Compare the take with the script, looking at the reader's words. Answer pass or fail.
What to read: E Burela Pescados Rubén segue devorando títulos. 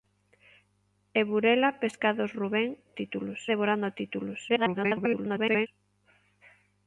fail